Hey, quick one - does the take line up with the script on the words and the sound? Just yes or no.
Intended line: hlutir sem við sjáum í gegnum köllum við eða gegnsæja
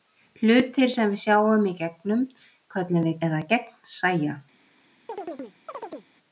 no